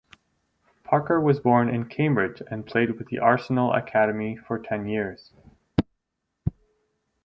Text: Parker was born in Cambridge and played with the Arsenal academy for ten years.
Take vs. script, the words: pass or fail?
pass